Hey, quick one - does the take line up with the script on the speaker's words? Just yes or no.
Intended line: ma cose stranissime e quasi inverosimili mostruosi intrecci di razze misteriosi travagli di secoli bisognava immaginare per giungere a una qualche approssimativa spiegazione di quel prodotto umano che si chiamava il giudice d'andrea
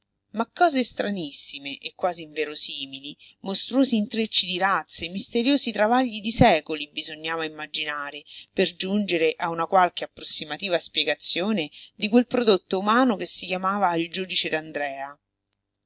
yes